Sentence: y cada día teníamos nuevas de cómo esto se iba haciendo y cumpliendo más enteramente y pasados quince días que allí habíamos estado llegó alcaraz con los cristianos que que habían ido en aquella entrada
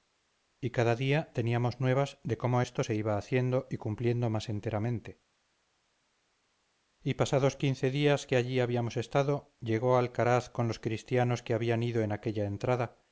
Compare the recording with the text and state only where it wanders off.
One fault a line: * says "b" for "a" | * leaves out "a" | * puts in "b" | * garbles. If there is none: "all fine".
* leaves out "que"